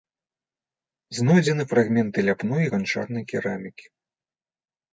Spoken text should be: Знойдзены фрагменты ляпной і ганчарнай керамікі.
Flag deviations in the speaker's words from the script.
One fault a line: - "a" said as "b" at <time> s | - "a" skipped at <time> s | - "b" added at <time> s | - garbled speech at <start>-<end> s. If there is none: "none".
none